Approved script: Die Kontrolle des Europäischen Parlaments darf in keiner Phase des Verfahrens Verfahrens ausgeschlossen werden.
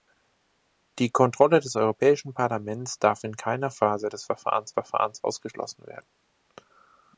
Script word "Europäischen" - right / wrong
right